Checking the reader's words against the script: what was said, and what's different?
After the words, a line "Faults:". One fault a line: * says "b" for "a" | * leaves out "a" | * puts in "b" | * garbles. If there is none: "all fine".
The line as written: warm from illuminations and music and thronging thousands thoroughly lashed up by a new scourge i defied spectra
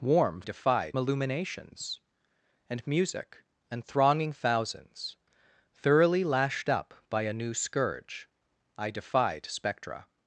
warm defied illuminations and music and thronging thousands thoroughly lashed up by a new scourge i defied spectra
Faults:
* says "defied" for "from"